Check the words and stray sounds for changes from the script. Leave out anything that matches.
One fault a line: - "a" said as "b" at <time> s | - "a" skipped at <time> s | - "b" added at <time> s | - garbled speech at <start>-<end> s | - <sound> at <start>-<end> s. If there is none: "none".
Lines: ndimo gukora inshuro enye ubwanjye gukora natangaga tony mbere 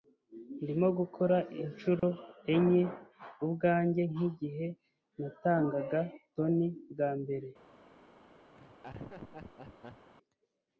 - dropout at 2.0-2.0 s
- "gukora" said as "nkigihe" at 4.1 s
- "bwa" added at 6.9 s
- laugh at 8.5-10.1 s